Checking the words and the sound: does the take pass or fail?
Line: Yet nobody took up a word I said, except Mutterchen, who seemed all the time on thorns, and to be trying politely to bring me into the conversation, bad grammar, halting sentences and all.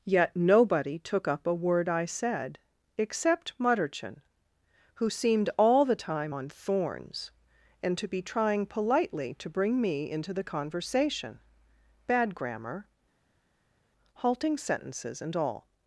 pass